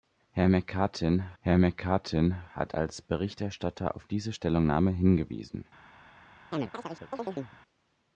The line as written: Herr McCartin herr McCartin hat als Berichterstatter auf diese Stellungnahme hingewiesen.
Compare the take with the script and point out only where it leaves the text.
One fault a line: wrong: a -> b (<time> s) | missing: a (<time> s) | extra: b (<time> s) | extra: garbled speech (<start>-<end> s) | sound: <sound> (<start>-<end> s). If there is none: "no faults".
sound: chirp (6.5-7.6 s)